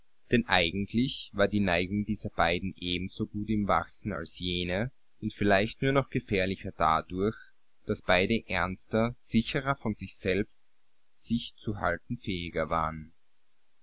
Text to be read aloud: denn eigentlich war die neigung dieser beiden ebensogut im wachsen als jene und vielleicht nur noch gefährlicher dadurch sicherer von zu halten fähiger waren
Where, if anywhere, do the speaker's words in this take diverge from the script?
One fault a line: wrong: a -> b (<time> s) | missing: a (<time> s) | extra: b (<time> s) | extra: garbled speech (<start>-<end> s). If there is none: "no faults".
extra: daß beide ernster (7.8 s)
extra: sich selbst sich (9.9 s)